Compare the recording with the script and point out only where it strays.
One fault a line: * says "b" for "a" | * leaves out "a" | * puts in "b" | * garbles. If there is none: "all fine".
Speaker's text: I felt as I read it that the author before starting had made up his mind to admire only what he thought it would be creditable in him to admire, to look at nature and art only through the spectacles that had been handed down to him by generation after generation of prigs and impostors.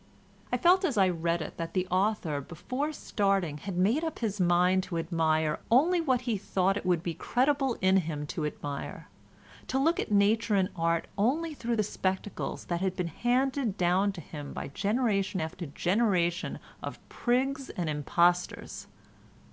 all fine